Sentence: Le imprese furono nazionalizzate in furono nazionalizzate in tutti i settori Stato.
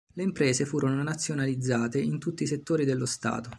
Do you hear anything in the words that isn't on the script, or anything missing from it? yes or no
yes